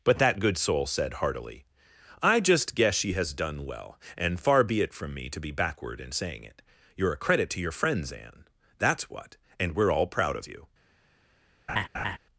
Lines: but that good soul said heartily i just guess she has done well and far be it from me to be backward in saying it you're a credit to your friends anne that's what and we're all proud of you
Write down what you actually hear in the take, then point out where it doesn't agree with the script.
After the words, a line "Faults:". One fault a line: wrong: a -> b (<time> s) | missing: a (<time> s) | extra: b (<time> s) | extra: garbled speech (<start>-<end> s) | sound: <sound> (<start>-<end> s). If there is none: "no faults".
but that good soul said heartily i just guess she has done well and far be it from me to be backward in saying it you're a credit to your friends anne that's what and we're all proud of you
Faults:
sound: laugh (11.7-12.2 s)